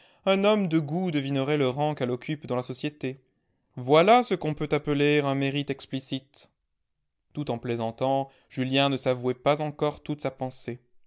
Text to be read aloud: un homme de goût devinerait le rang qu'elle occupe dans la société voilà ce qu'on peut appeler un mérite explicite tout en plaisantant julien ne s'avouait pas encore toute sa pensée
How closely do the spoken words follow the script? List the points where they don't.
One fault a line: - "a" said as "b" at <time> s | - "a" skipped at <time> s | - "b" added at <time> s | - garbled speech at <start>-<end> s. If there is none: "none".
none